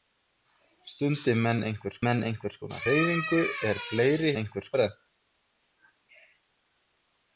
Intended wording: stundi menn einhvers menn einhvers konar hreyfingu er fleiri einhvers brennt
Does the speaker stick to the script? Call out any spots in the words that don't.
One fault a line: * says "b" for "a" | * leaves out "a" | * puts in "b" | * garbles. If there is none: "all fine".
all fine